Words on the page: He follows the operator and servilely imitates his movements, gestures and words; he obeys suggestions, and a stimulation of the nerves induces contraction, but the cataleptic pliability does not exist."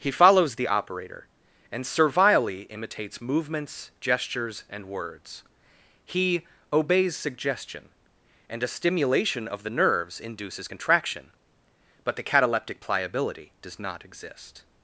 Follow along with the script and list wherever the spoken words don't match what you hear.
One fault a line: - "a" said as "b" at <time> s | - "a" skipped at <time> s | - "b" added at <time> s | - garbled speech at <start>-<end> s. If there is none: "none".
- "his" skipped at 3.2 s
- "suggestions" said as "suggestion" at 7.2 s